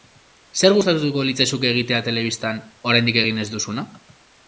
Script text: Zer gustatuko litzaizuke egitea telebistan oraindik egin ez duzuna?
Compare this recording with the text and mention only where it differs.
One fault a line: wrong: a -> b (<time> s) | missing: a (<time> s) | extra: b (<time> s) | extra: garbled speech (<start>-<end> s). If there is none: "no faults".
no faults